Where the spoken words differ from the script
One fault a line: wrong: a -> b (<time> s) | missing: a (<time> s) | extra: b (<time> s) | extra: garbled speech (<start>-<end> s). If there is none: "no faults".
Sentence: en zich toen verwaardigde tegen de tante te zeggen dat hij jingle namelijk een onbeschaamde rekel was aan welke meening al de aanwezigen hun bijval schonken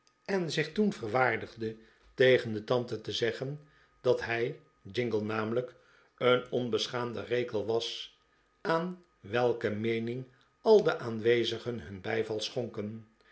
no faults